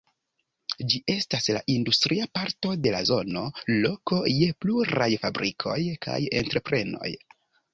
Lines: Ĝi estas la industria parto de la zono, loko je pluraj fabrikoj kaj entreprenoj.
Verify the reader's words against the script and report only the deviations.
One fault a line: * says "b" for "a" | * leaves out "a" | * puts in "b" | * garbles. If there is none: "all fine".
all fine